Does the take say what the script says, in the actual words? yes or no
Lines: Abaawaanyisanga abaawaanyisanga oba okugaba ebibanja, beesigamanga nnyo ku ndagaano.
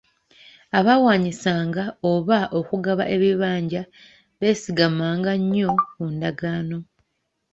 no